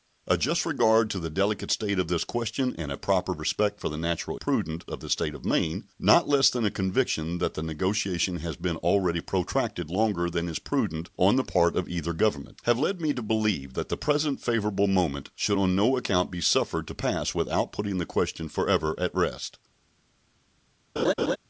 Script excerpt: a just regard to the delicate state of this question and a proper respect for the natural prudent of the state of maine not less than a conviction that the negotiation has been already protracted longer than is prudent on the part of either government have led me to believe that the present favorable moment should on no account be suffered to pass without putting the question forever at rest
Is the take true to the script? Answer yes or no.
yes